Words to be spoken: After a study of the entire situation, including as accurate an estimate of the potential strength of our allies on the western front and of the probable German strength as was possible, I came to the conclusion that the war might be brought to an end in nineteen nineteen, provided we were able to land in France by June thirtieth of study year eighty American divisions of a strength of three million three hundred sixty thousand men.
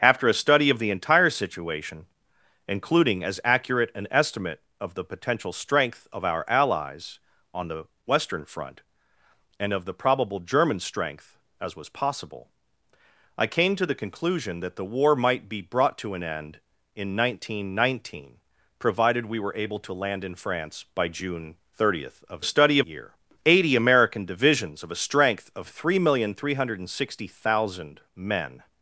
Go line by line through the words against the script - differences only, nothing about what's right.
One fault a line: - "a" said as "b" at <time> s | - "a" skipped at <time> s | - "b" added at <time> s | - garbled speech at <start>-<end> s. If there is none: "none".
none